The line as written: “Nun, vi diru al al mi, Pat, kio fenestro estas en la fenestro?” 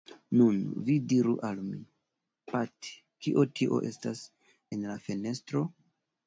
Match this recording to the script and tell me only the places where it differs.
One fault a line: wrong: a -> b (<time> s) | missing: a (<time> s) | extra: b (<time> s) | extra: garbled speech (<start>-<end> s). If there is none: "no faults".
missing: al (1.6 s)
wrong: fenestro -> tio (3.6 s)